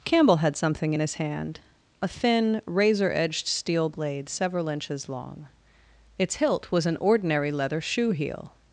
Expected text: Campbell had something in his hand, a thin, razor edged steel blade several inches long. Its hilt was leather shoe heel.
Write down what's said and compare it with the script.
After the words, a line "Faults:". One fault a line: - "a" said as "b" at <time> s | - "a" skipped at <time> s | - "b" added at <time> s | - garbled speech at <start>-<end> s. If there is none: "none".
Campbell had something in his hand, a thin, razor edged steel blade several inches long. Its hilt was an ordinary leather shoe heel.
Faults:
- "an ordinary" added at 6.8 s